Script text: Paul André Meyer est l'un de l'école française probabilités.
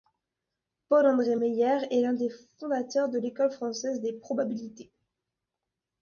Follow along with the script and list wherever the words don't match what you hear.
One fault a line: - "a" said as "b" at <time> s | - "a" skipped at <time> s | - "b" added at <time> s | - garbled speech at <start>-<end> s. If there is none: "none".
- "des fondateurs" added at 2.1 s
- "des" added at 4.0 s